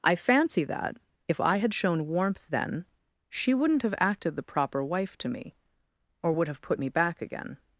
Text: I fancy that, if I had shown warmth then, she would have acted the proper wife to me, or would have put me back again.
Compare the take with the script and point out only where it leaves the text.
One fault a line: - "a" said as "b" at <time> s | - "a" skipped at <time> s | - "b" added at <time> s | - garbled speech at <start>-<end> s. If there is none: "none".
- "would" said as "wouldn't" at 3.5 s